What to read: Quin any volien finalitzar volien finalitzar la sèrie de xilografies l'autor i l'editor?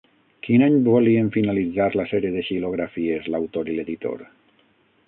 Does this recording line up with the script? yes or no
no